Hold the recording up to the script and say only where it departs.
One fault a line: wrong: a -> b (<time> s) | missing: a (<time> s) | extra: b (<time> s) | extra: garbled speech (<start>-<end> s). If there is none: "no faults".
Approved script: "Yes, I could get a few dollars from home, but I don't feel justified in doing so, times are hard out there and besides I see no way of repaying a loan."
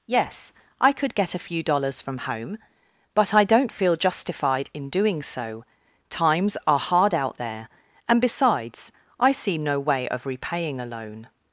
no faults